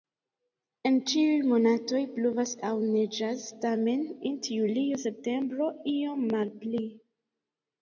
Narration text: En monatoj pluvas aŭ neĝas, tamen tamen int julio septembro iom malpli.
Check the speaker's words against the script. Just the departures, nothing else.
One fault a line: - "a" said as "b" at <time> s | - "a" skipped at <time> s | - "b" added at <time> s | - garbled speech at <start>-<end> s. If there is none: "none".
- "ĉiuj" added at 1.1 s
- "tamen" skipped at 4.0 s